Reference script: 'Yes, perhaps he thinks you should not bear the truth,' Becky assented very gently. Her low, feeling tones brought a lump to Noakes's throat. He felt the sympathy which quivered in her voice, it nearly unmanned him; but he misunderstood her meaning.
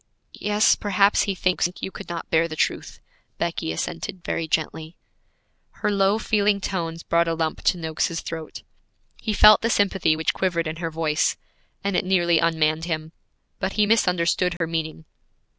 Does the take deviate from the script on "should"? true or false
true